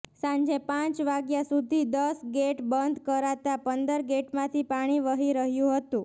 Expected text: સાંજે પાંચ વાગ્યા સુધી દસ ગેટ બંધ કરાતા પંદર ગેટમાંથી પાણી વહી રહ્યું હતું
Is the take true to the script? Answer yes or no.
yes